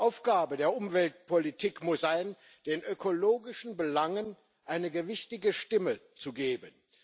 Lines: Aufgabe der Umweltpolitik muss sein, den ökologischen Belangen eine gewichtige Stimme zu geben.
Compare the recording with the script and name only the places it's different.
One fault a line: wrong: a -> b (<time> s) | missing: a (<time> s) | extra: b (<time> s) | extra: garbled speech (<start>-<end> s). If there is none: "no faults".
no faults